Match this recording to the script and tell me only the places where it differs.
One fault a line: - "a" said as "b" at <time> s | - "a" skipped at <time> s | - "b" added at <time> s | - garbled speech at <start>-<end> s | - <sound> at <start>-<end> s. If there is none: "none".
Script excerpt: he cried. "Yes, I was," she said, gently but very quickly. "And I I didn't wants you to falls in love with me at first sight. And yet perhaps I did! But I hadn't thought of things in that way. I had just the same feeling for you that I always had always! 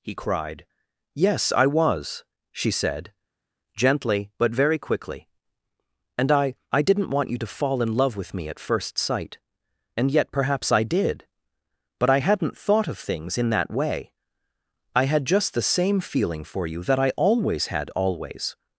- "wants" said as "want" at 7.1 s
- "falls" said as "fall" at 7.6 s